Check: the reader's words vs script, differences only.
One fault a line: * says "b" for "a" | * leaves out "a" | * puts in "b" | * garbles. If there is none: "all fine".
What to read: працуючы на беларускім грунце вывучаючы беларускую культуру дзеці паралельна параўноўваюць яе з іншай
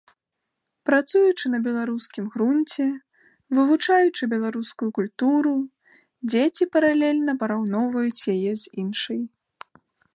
all fine